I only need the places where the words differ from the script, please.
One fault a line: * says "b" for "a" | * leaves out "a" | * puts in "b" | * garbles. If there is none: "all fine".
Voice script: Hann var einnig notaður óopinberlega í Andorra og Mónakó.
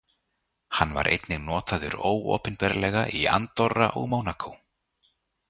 all fine